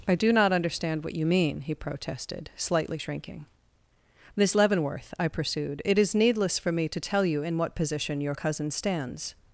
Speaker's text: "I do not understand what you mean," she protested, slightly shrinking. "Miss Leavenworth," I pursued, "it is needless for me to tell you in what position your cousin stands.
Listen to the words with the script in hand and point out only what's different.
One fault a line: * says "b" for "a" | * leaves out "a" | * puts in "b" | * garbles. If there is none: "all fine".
* says "he" for "she"